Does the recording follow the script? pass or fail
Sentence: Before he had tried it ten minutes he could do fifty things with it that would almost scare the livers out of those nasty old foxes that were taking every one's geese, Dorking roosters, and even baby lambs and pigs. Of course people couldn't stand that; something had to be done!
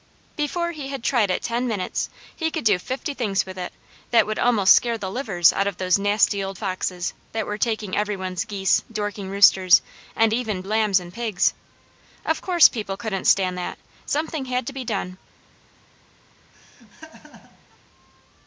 fail